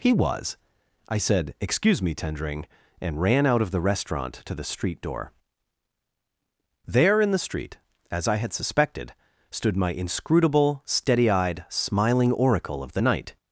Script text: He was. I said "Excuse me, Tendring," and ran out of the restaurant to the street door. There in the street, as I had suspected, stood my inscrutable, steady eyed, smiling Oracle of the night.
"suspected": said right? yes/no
yes